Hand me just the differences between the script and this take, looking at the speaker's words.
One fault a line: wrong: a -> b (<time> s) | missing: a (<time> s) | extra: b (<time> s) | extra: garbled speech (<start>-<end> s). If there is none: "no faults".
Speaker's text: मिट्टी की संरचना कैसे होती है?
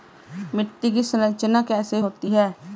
no faults